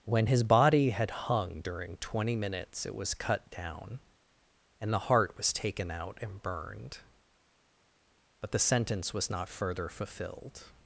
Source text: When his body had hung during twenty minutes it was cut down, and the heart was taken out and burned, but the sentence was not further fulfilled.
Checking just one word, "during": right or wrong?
right